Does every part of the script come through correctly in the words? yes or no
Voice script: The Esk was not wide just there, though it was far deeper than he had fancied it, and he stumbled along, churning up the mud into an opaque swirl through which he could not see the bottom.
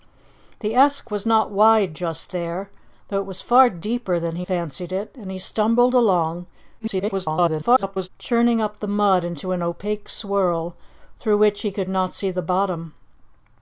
no